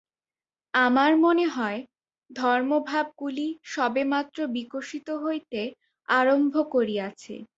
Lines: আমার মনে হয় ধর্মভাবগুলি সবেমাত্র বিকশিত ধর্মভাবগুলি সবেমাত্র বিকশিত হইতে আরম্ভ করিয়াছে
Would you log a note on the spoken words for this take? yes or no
yes